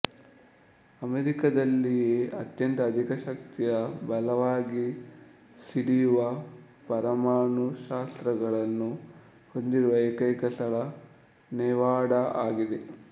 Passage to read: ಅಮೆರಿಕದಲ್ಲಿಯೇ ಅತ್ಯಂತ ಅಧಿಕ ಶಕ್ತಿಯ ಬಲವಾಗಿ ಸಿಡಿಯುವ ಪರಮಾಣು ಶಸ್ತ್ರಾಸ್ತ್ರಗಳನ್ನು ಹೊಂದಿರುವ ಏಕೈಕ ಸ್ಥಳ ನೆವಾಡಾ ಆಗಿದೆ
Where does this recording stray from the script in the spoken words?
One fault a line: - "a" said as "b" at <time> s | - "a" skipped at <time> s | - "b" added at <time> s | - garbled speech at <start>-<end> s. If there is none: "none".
none